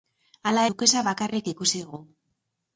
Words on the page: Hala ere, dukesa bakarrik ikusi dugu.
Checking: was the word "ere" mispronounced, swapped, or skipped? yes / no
yes